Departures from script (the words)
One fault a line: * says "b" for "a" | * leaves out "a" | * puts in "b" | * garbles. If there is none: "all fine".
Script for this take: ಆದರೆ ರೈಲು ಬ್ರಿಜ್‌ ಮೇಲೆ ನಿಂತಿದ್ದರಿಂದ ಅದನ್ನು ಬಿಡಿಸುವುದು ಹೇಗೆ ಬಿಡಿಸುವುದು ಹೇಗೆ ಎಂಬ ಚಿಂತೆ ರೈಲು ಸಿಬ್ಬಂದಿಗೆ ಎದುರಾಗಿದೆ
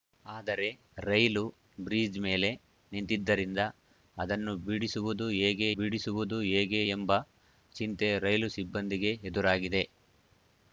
all fine